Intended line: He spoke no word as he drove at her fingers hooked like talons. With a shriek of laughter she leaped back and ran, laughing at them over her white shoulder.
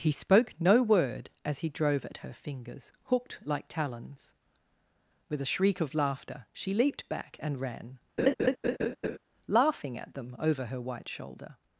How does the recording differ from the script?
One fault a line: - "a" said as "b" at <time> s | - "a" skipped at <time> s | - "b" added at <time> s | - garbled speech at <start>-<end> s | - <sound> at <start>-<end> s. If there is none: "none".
- laugh at 8.2-9.2 s